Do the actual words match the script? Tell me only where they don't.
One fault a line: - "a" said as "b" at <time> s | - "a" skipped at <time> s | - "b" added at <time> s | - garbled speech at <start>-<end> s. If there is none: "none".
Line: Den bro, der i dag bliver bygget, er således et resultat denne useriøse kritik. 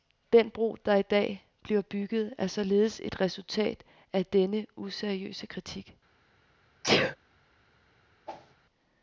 - "af" added at 4.1 s